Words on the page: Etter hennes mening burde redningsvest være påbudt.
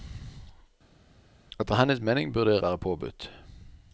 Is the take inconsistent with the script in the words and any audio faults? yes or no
yes